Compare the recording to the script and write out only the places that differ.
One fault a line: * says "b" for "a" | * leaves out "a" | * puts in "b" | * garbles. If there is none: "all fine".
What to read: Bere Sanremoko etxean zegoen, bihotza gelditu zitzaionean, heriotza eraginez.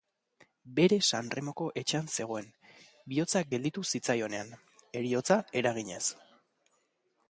all fine